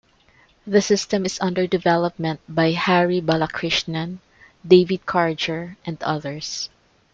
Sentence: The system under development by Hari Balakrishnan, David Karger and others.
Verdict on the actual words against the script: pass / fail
fail